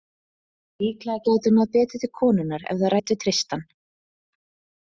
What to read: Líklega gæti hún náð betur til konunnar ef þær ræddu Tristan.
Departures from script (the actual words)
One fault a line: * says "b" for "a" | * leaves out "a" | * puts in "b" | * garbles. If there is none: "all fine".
all fine